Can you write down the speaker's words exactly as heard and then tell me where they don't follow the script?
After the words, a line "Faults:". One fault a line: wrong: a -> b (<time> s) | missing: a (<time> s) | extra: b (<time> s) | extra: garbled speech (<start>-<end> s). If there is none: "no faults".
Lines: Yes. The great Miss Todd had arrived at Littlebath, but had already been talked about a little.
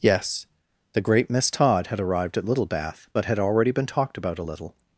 Yes. The great Miss Todd had arrived at Littlebath, but had already been talked about a little.
Faults:
no faults